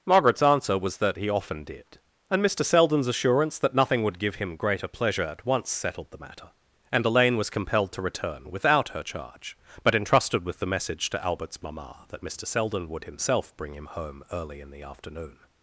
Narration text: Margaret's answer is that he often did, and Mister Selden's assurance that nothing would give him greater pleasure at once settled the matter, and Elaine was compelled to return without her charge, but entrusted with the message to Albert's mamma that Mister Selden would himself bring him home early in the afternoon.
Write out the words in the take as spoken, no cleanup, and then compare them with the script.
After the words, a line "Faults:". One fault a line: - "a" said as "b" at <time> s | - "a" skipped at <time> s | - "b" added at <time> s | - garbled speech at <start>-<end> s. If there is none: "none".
Margaret's answer was that he often did, and Mister Selden's assurance that nothing would give him greater pleasure at once settled the matter, and Elaine was compelled to return without her charge, but entrusted with the message to Albert's mamma that Mister Selden would himself bring him home early in the afternoon.
Faults:
- "is" said as "was" at 0.8 s